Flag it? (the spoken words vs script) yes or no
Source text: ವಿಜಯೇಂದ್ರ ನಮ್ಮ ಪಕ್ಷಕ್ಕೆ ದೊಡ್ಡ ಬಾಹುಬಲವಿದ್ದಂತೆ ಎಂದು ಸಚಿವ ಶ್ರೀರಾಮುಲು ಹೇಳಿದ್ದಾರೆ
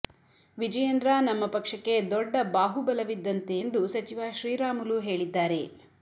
no